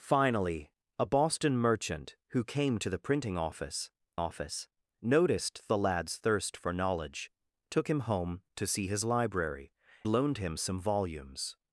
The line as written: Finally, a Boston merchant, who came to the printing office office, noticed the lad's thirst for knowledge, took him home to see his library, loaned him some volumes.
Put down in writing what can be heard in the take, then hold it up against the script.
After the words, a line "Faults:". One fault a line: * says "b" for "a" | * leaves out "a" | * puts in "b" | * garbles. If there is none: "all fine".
Finally, a Boston merchant, who came to the printing office office, noticed the lad's thirst for knowledge, took him home to see his library, loaned him some volumes.
Faults:
all fine